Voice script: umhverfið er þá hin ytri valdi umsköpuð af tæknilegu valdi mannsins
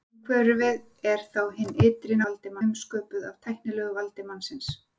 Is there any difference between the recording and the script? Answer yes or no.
no